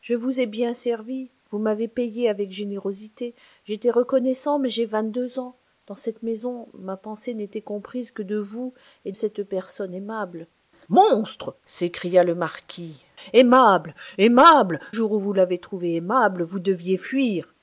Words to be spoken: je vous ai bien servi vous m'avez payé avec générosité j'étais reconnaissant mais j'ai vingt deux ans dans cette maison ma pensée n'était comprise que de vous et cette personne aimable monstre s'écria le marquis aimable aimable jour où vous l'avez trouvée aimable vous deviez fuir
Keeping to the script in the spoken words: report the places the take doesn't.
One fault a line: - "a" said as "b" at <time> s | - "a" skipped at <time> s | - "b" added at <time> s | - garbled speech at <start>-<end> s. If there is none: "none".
none